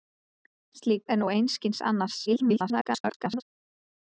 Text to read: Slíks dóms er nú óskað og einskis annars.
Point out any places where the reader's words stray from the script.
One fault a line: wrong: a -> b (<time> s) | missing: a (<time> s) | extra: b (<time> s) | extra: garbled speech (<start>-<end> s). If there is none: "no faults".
missing: dóms (1.1 s)
missing: óskað (1.3 s)
extra: garbled speech (2.3-3.4 s)